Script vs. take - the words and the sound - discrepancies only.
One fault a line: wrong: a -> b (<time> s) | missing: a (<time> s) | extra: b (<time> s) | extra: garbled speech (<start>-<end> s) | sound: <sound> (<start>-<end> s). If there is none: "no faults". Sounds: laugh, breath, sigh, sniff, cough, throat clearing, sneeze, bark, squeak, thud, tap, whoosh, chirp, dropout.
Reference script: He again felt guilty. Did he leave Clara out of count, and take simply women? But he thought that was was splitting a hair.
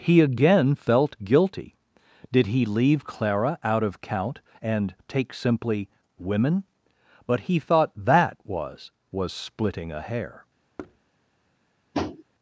sound: thud (10.8-11.0 s)
sound: tap (11.9-12.2 s)